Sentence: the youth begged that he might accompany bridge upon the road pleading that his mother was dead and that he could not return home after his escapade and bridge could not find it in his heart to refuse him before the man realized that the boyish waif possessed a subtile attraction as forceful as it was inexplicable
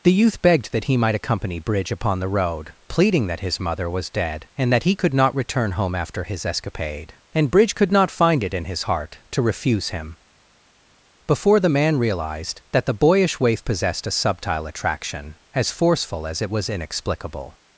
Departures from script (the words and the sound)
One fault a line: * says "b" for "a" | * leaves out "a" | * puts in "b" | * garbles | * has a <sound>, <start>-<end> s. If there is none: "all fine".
all fine